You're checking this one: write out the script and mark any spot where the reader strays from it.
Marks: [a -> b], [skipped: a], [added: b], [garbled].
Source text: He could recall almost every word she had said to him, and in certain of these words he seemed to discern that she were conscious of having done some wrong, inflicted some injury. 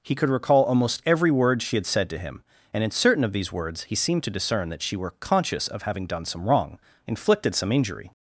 He could recall almost every word she had said to him, and in certain of these words he seemed to discern that she were conscious of having done some wrong, inflicted some injury.